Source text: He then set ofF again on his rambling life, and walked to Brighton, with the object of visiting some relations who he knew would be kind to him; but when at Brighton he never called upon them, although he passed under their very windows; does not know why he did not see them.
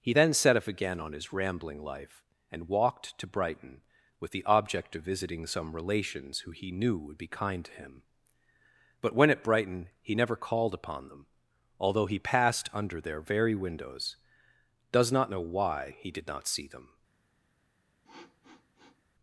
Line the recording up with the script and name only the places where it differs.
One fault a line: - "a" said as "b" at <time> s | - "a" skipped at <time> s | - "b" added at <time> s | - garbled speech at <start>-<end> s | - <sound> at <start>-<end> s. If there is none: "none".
- sniff at 18.0-19.0 s